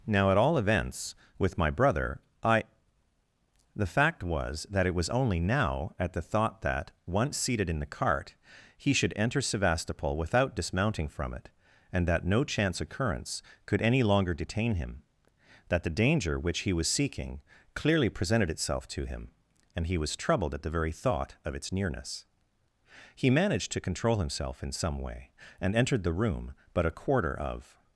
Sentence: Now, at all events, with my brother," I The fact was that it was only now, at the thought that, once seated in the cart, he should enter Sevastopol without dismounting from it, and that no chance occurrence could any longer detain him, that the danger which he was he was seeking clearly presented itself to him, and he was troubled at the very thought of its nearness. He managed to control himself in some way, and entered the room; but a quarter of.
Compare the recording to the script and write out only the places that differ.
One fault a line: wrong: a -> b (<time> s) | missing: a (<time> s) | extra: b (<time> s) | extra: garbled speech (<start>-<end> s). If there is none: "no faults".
missing: he was (16.9 s)